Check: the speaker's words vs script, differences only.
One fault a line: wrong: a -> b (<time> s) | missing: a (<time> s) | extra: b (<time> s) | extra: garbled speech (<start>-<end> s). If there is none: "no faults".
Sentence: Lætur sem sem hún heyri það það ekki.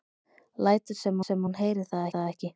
no faults